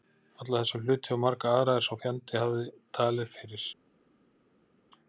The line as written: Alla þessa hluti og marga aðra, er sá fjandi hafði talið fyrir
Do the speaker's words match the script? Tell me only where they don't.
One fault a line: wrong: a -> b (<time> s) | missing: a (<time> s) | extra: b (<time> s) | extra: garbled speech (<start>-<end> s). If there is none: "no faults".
no faults